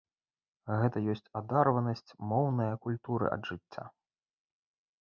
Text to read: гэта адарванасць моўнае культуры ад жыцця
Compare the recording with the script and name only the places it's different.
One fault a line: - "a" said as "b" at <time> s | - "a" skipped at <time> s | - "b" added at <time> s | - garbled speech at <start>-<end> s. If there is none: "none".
- "ёсць" added at 1.1 s